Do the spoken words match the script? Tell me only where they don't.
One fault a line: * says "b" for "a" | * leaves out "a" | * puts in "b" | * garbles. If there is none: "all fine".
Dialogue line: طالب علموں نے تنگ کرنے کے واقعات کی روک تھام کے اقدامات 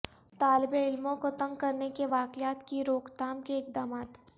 * says "کو" for "نے"